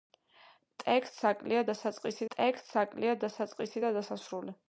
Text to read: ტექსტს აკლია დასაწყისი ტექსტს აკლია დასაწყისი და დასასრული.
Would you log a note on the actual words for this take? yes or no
no